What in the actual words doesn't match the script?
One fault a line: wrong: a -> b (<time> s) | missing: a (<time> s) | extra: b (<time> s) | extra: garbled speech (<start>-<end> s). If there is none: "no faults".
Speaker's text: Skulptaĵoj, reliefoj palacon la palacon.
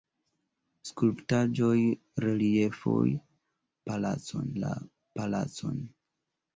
no faults